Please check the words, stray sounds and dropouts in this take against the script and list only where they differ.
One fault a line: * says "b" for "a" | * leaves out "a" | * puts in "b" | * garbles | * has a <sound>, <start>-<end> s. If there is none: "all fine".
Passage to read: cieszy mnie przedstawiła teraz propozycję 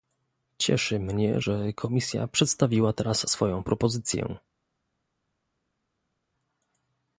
* puts in "że komisja"
* puts in "swoją"